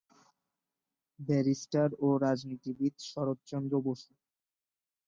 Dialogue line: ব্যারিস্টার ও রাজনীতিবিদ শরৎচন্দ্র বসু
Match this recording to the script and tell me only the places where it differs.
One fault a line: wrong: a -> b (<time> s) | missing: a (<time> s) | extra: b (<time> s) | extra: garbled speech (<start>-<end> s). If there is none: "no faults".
no faults